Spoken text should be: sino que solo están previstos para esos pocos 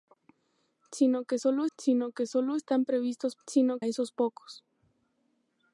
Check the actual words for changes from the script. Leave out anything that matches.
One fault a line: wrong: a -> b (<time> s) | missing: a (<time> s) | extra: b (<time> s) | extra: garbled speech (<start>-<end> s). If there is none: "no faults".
extra: sino que solo (1.8 s)
wrong: para -> sino (3.5 s)